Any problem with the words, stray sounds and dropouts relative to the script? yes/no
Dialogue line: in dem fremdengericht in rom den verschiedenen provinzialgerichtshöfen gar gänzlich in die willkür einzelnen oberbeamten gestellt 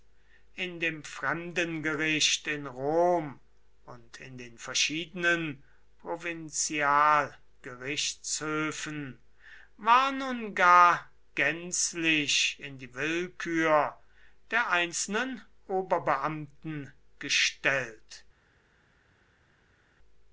yes